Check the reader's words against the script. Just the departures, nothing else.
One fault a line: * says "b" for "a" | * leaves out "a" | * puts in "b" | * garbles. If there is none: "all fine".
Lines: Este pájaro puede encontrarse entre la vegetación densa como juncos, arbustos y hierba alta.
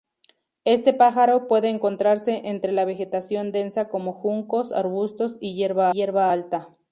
* puts in "hierba"